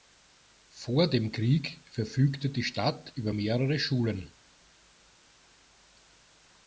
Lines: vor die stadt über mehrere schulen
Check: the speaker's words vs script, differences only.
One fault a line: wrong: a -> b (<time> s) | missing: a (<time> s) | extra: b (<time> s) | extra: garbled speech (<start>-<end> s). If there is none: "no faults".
extra: dem krieg verfügte (1.1 s)